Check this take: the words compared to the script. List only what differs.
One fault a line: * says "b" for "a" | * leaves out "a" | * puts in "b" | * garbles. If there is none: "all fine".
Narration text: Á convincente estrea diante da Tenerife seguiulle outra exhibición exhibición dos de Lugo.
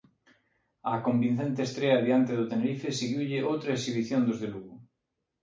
* says "do" for "da"
* leaves out "exhibición"